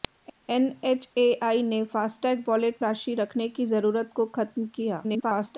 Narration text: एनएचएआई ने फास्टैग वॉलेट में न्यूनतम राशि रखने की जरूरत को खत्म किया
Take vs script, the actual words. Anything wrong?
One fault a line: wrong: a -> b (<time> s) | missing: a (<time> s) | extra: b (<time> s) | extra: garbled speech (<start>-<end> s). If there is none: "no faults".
missing: में न्यूनतम (2.8 s)
extra: garbled speech (5.0-5.6 s)